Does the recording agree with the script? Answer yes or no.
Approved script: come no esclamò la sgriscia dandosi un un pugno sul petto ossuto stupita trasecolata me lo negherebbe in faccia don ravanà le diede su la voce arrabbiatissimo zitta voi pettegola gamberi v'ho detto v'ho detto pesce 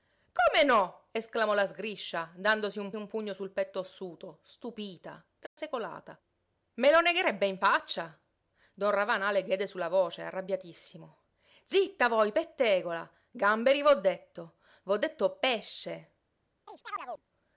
yes